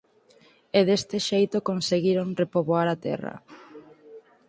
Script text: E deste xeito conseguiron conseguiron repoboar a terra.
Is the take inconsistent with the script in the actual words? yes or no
yes